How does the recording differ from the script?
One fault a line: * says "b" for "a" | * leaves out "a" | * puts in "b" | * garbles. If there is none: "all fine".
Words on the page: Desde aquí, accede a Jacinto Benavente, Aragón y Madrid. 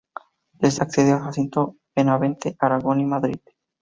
* leaves out "aquí"